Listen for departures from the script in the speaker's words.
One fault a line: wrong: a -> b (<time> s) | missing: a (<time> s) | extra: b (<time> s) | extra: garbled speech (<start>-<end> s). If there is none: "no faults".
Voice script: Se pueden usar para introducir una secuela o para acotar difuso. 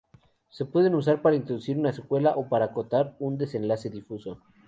extra: un desenlace (3.2 s)